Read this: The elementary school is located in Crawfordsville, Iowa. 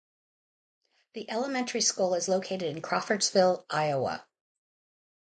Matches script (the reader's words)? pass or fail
pass